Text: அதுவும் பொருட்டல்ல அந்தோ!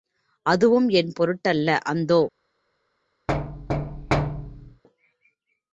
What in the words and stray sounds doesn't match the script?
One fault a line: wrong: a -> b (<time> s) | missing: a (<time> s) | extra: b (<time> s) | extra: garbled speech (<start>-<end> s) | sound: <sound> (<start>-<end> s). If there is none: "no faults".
extra: என் (0.9 s)
sound: thud (3.3-4.8 s)